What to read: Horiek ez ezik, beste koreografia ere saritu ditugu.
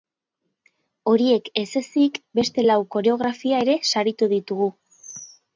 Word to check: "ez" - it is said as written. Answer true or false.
true